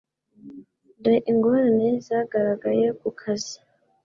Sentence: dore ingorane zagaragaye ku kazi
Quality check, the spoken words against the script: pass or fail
pass